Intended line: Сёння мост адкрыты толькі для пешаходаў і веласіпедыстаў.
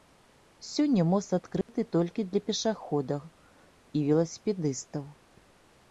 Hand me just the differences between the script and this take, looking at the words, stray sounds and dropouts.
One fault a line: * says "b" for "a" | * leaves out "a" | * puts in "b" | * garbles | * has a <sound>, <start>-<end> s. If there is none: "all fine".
* has a dropout, 1.6-1.7 s